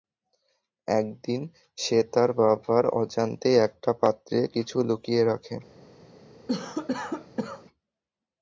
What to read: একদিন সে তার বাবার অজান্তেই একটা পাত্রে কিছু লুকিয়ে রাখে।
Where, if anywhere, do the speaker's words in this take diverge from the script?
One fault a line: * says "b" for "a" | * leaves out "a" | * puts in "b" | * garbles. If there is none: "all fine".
all fine